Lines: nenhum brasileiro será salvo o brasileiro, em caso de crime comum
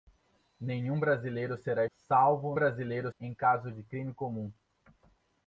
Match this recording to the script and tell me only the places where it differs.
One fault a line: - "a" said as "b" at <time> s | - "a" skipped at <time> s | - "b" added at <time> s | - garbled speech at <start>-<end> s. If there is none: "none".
none